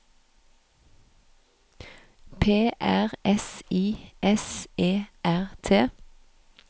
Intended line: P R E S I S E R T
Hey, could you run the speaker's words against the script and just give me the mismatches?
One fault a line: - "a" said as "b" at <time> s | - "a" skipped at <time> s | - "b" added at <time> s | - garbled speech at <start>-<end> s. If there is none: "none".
- "E" skipped at 3.1 s